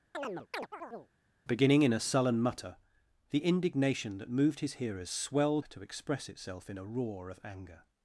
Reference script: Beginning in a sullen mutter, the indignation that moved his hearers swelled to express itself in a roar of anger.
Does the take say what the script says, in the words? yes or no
yes